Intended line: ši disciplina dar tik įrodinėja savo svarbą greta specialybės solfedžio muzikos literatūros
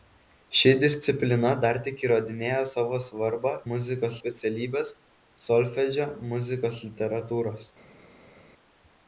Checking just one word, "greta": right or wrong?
wrong